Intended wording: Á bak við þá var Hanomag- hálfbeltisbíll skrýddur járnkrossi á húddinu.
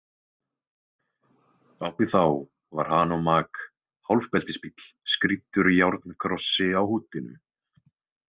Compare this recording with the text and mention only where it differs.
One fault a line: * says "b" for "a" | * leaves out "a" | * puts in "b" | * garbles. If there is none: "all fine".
* leaves out "bak"